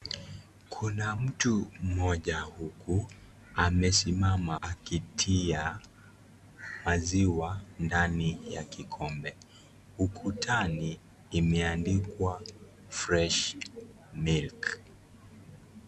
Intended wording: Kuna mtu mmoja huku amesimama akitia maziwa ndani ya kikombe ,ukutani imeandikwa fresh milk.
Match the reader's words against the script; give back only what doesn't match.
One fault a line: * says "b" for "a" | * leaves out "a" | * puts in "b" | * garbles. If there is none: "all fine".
all fine